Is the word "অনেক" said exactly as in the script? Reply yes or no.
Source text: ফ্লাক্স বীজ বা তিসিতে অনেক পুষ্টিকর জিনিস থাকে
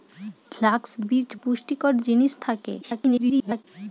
no